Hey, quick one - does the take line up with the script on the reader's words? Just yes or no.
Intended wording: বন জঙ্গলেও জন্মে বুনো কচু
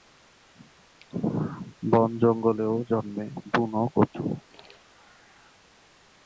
yes